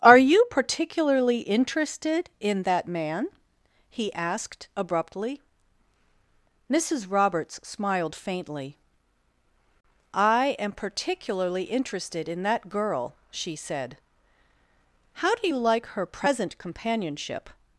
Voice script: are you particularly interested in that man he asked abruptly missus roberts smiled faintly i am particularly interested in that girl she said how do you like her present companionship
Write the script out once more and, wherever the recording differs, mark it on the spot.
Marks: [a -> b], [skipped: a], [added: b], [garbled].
are you particularly interested in that man he asked abruptly missus roberts smiled faintly i am particularly interested in that girl she said how do you like her present companionship